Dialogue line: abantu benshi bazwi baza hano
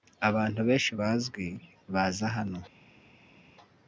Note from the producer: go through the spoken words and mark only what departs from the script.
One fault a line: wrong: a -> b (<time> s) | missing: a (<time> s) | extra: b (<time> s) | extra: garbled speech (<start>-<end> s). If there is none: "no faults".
no faults